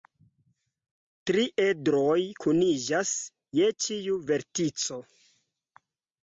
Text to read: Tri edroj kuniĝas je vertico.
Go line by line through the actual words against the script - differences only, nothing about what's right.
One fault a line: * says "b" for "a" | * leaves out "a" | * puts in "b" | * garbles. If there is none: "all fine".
* puts in "ĉiu"